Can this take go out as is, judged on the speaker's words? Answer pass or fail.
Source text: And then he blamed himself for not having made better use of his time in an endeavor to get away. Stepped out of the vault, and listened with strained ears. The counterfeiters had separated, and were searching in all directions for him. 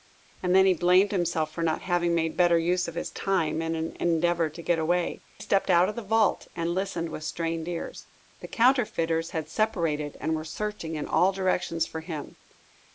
pass